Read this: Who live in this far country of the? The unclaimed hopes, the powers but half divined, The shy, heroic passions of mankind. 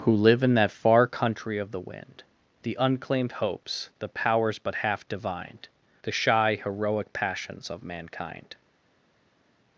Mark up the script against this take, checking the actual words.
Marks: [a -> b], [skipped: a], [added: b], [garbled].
Who live in [this -> that] far country of the? [added: wind] The unclaimed hopes, the powers but half divined, The shy, heroic passions of mankind.